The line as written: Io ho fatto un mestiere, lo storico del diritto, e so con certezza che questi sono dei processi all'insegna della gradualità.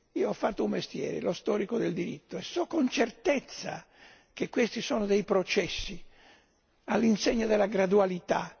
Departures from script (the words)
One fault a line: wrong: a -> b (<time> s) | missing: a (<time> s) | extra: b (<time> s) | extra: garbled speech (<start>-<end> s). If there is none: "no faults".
no faults